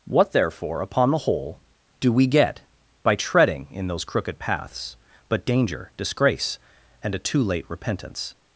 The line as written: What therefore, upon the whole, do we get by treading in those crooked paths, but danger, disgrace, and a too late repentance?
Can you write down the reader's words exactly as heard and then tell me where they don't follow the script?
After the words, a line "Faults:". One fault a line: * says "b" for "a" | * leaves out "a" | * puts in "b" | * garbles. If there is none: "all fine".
What therefore, upon the whole, do we get by treading in those crooked paths, but danger, disgrace, and a too late repentance?
Faults:
all fine